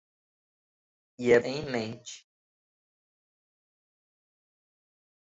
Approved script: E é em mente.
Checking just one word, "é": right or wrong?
right